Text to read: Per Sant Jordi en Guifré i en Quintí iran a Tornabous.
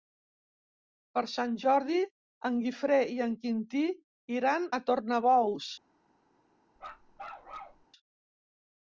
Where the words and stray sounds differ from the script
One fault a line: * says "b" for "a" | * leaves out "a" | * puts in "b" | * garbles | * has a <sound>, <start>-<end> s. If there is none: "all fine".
* has a bark, 6.8-7.8 s